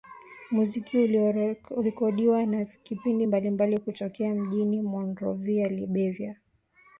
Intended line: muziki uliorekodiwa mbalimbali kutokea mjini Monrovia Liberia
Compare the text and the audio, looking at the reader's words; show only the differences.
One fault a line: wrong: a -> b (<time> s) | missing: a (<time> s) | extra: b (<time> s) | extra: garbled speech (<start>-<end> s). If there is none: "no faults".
extra: na vipindi (2.5 s)